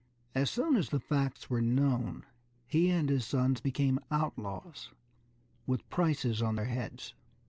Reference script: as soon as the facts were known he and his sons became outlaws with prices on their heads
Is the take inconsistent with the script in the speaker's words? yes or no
no